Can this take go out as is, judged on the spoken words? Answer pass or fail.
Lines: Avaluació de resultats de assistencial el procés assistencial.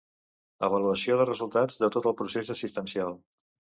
fail